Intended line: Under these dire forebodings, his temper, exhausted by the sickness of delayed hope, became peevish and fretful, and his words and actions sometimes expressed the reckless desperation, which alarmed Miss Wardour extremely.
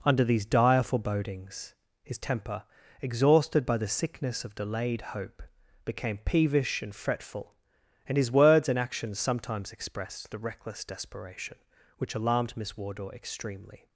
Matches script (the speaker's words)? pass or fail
pass